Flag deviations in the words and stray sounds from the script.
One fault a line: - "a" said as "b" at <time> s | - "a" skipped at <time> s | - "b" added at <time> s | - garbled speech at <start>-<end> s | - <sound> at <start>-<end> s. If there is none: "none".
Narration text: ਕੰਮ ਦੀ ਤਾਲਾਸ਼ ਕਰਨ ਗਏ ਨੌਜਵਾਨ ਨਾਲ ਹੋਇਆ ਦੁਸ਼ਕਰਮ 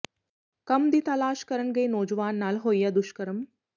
none